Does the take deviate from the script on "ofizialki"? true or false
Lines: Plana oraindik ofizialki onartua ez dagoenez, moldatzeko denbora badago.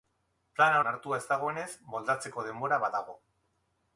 true